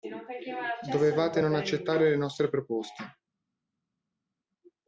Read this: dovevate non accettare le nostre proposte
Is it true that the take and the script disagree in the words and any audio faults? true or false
false